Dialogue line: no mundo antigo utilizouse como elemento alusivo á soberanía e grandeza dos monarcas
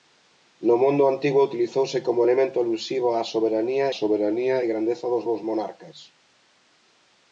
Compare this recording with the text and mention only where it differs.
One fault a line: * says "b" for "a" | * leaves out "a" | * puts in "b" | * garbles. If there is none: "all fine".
* puts in "soberanía"
* puts in "dos"